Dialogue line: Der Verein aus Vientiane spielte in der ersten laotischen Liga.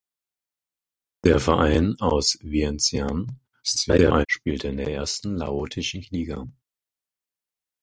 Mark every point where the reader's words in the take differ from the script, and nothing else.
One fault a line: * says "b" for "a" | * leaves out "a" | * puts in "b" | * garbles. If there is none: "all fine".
* garbles